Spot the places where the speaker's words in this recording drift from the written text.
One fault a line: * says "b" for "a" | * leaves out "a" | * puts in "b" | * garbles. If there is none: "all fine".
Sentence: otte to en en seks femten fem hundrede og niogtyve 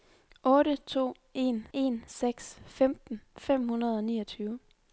all fine